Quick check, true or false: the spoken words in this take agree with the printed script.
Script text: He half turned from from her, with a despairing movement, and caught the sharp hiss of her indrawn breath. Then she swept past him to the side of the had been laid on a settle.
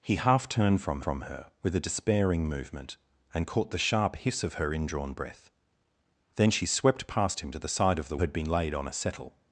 true